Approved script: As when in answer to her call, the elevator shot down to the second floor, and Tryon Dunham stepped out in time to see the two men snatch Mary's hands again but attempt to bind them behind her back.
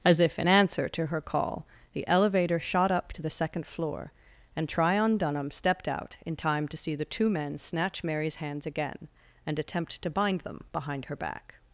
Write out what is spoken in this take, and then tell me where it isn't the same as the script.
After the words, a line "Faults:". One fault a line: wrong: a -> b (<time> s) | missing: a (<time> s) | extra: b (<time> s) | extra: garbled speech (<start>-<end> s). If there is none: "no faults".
As if in answer to her call, the elevator shot up to the second floor, and Tryon Dunham stepped out in time to see the two men snatch Mary's hands again and attempt to bind them behind her back.
Faults:
wrong: when -> if (0.2 s)
wrong: down -> up (2.9 s)
wrong: but -> and (9.5 s)